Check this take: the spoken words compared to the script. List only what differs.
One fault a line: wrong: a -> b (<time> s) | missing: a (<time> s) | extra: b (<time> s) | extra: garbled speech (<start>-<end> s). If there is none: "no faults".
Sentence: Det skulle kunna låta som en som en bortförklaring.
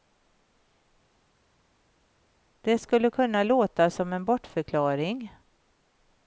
missing: som en (4.2 s)